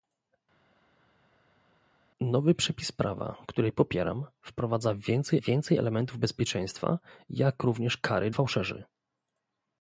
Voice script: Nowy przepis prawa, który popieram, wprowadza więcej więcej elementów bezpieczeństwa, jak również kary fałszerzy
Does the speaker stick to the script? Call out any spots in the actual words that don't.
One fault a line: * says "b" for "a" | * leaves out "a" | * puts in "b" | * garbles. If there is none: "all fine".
all fine